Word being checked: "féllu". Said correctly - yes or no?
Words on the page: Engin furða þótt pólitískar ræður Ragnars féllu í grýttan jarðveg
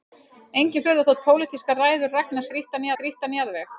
no